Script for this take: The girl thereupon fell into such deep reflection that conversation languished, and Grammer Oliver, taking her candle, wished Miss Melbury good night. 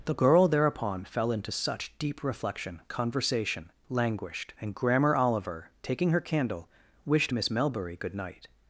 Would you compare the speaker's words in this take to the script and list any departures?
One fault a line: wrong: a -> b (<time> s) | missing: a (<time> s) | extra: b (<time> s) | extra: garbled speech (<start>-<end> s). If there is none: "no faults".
missing: that (2.8 s)